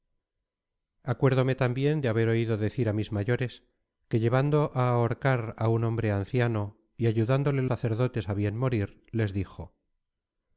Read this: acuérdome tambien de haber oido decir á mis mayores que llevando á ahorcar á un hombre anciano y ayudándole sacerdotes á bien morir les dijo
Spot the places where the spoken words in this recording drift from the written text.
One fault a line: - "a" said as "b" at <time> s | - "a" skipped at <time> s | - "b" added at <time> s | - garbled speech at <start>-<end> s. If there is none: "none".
none